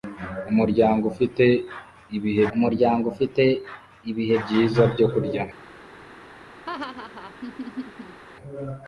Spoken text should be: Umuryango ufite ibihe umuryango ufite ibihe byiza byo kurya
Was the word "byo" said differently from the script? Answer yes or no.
no